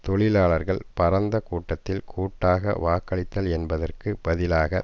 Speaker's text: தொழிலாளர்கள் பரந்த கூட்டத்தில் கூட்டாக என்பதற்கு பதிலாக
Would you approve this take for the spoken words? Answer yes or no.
no